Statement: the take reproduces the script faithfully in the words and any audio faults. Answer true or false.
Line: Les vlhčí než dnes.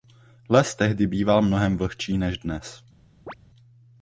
false